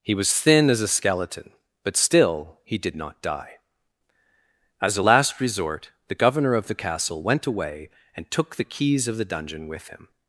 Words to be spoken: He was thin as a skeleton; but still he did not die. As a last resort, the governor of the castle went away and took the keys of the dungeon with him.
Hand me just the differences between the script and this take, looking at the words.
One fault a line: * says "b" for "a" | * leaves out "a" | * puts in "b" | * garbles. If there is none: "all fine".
all fine